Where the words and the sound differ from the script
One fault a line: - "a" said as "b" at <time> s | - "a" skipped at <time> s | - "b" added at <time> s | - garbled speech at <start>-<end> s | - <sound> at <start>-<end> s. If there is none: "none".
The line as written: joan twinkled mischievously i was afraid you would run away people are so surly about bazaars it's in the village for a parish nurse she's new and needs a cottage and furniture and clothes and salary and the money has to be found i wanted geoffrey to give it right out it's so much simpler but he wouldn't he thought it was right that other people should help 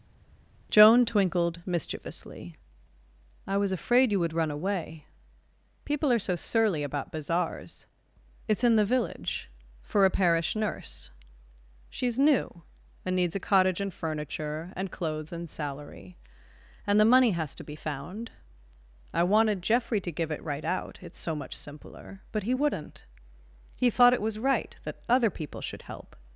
none